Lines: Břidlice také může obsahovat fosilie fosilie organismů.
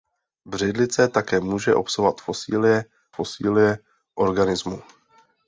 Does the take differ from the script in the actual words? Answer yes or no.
no